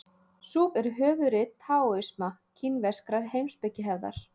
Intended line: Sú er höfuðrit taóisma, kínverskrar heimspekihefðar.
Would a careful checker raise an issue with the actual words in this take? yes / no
no